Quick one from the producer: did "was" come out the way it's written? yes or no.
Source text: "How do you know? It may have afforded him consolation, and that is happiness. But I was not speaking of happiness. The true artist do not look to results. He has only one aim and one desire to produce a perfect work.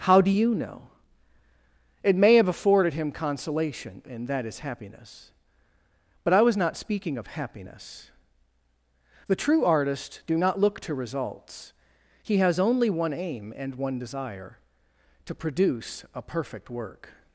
yes